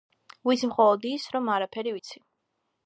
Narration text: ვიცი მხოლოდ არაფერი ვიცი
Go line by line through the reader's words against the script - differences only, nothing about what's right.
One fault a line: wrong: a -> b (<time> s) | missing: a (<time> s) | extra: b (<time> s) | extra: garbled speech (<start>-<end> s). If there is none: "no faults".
extra: ის რომ (1.1 s)